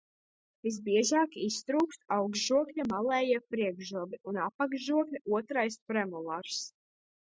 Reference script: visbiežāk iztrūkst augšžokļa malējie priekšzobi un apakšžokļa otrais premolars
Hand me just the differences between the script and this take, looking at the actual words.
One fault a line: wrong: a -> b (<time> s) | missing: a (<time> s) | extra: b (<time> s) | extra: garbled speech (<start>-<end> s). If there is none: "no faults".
no faults